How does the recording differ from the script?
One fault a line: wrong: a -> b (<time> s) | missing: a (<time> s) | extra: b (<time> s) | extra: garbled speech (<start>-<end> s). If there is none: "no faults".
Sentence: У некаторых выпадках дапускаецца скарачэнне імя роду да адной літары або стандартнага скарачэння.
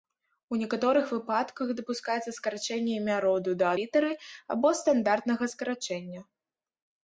missing: адной (3.7 s)